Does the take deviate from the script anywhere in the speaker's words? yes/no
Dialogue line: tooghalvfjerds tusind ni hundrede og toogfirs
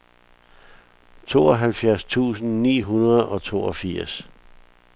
no